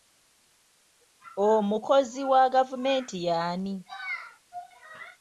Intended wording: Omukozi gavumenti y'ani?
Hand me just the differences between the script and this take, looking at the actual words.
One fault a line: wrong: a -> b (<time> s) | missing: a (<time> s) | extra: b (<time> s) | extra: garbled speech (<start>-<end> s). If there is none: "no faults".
extra: wa (2.3 s)